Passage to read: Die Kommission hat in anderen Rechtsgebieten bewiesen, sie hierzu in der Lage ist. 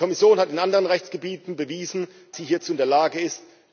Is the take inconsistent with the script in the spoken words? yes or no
no